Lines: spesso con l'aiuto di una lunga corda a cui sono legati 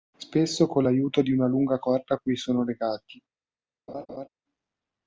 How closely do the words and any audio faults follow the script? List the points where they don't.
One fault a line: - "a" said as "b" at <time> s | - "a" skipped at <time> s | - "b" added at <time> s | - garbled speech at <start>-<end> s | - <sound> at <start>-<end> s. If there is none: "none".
- laugh at 3.9-4.3 s